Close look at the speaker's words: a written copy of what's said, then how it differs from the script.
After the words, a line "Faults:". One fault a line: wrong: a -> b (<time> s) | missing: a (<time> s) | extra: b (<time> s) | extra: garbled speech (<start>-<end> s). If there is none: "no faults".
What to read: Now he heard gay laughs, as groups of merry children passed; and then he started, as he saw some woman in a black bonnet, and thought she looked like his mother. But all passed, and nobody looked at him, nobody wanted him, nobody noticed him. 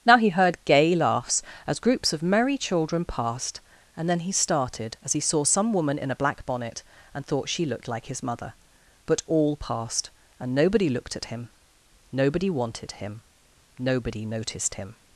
Now he heard gay laughs, as groups of merry children passed; and then he started, as he saw some woman in a black bonnet, and thought she looked like his mother. But all passed, and nobody looked at him, nobody wanted him, nobody noticed him.
Faults:
no faults